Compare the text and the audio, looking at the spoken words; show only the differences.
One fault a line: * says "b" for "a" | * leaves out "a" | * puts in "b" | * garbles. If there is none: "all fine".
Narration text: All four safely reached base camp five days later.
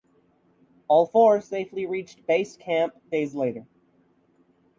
* leaves out "five"